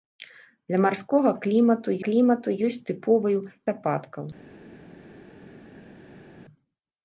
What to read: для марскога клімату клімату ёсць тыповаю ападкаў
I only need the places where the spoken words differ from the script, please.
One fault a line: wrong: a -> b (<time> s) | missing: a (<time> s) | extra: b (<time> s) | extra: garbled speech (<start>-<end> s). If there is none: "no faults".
no faults